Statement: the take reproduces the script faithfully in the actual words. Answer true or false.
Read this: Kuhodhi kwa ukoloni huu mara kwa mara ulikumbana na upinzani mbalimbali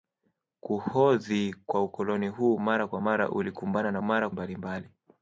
false